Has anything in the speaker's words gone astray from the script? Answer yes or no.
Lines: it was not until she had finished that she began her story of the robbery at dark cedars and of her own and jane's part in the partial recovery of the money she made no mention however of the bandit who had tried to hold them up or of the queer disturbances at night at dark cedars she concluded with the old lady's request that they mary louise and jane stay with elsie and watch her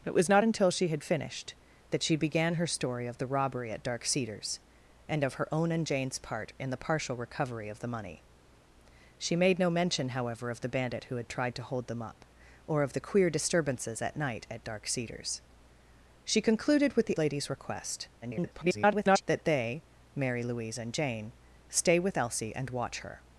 yes